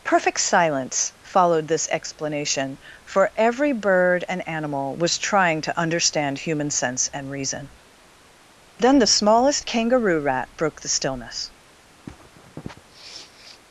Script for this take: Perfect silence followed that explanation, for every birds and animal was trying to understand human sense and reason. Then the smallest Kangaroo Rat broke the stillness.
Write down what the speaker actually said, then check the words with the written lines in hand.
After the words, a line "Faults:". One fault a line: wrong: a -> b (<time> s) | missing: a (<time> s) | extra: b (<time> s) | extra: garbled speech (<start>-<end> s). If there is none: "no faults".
Perfect silence followed this explanation, for every bird and animal was trying to understand human sense and reason. Then the smallest Kangaroo Rat broke the stillness.
Faults:
wrong: that -> this (1.7 s)
wrong: birds -> bird (3.7 s)